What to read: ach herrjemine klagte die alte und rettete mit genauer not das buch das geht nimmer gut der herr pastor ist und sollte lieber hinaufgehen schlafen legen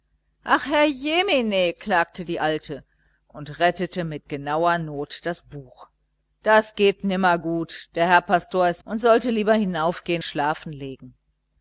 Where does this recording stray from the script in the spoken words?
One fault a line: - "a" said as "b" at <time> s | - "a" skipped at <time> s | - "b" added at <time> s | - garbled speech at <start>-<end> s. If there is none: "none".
none